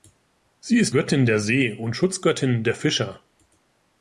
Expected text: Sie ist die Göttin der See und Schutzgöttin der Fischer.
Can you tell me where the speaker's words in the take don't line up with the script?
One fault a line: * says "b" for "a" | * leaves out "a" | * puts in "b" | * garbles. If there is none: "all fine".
* leaves out "die"